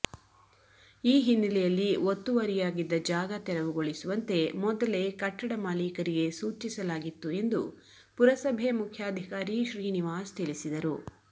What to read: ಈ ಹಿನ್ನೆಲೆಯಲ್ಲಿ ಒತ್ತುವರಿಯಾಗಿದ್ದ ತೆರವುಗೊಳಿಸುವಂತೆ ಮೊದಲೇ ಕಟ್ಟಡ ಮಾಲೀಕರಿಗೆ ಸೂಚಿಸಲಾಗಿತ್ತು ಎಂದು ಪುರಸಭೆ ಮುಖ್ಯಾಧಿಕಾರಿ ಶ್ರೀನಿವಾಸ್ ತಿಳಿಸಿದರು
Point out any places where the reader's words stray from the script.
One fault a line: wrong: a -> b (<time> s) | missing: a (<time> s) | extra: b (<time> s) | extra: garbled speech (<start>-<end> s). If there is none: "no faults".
extra: ಜಾಗ (3.0 s)